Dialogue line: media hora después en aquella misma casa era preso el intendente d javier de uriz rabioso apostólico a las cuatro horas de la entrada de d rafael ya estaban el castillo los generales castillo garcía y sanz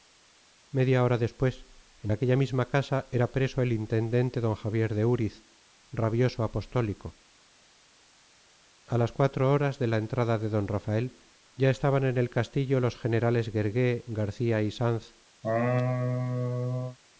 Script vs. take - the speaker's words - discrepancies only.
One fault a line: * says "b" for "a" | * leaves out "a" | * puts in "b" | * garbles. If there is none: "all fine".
* puts in "en"
* says "guergué" for "castillo"